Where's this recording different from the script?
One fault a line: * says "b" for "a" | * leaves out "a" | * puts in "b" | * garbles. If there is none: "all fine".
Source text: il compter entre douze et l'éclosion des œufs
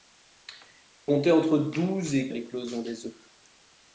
all fine